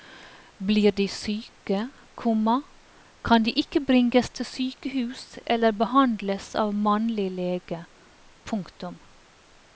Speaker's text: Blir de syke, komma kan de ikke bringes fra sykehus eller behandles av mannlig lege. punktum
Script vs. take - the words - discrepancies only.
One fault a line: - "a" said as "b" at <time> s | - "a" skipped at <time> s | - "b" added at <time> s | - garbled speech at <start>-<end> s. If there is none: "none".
- "fra" said as "til" at 4.3 s